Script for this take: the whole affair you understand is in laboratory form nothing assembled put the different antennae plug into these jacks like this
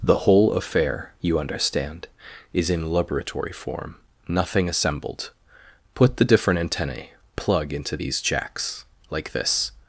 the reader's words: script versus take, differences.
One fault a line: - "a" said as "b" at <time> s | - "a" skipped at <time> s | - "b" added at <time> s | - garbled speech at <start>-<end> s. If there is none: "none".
none